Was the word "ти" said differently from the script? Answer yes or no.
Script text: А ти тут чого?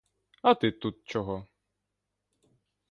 no